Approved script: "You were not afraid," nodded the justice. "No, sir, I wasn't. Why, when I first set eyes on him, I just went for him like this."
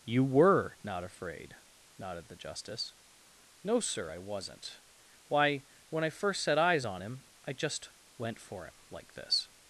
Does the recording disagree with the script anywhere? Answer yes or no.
no